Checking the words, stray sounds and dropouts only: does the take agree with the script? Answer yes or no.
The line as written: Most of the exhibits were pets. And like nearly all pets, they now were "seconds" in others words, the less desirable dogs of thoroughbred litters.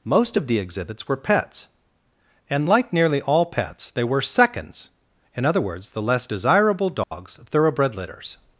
no